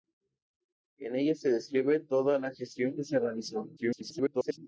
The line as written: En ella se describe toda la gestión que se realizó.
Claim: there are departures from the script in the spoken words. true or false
true